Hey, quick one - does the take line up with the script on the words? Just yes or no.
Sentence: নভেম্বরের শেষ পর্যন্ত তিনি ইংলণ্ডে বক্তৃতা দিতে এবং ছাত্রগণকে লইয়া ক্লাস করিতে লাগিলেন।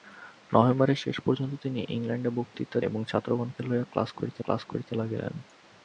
no